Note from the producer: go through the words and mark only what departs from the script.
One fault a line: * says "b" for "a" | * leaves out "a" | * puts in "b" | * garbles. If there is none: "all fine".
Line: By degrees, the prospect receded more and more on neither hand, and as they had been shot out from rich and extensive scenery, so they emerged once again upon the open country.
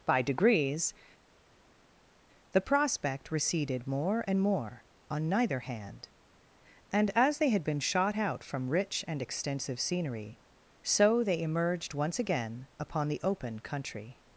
all fine